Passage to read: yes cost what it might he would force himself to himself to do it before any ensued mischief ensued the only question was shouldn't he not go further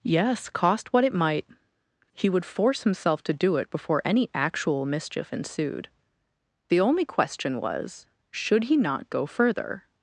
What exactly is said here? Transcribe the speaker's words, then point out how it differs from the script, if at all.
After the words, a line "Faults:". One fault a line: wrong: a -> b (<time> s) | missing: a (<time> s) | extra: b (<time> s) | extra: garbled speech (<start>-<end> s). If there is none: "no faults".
yes cost what it might he would force himself to do it before any actual mischief ensued the only question was should he not go further
Faults:
missing: himself to (3.3 s)
wrong: ensued -> actual (4.3 s)
wrong: shouldn't -> should (8.3 s)